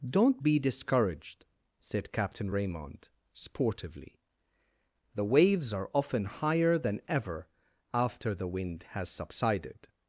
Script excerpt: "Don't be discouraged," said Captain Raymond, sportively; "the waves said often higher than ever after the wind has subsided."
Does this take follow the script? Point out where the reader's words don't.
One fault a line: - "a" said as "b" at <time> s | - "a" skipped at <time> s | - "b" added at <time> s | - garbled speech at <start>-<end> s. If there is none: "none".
- "said" said as "are" at 5.7 s